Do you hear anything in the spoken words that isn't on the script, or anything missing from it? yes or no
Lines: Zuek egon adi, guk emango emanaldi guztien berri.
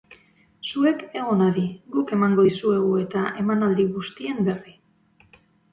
yes